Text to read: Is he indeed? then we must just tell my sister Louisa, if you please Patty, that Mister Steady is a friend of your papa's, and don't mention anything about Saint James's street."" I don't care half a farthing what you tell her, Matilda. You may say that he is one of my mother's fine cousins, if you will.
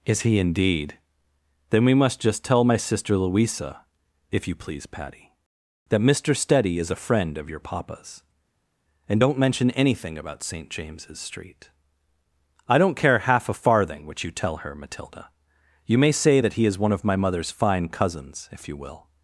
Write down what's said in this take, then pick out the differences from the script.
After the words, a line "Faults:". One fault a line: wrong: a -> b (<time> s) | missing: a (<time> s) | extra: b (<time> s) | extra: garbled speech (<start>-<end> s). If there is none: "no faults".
Is he indeed? then we must just tell my sister Louisa, if you please Patty, that Mister Steady is a friend of your papa's, and don't mention anything about Saint James's street."" I don't care half a farthing what you tell her, Matilda. You may say that he is one of my mother's fine cousins, if you will.
Faults:
no faults